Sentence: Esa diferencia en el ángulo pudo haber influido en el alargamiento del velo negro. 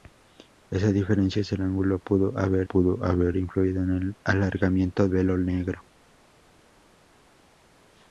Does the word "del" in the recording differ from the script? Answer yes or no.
yes